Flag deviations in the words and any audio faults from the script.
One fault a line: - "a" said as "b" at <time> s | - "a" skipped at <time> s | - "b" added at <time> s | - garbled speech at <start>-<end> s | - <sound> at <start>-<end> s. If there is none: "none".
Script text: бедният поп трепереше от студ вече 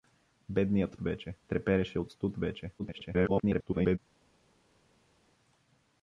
- "поп" said as "вече" at 1.0 s
- garbled speech at 2.8-4.0 s